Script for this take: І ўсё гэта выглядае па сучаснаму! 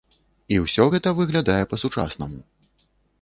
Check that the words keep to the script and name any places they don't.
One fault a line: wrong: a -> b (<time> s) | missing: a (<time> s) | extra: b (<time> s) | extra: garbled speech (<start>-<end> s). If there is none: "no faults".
no faults